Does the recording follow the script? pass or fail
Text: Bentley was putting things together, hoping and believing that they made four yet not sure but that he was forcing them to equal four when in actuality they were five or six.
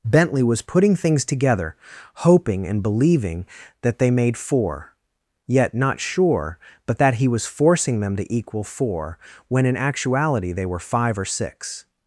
pass